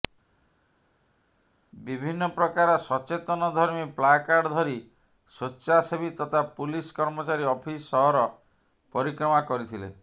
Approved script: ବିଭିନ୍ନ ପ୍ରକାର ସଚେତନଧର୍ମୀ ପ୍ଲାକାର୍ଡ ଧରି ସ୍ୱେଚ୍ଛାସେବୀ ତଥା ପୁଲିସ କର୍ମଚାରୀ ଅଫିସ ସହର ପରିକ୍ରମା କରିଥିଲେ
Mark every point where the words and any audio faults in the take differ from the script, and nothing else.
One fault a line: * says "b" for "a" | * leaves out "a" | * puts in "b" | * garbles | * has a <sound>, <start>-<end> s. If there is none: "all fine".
all fine